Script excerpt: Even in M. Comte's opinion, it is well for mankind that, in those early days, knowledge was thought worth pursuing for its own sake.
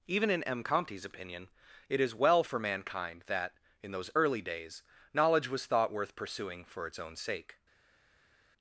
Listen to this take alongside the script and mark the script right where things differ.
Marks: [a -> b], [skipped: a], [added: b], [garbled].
Even in M. Comte's opinion, it is well for mankind that, in those early days, knowledge was thought worth pursuing for its own sake.